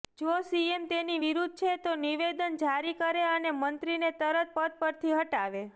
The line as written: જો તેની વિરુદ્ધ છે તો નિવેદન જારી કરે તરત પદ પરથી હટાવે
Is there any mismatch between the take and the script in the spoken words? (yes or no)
yes